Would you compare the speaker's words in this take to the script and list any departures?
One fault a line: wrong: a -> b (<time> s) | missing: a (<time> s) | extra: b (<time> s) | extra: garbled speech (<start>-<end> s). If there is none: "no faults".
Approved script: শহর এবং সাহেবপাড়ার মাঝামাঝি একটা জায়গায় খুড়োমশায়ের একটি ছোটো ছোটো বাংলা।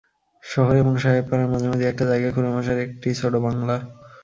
missing: ছোটো (3.4 s)